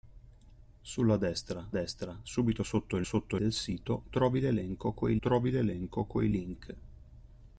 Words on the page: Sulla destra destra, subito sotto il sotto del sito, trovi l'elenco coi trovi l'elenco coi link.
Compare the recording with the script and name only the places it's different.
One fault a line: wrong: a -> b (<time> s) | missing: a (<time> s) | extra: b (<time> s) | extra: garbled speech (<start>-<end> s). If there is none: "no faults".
no faults